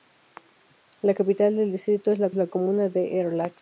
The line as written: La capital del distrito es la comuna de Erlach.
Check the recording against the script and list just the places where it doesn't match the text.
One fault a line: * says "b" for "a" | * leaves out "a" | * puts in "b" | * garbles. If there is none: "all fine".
* puts in "la"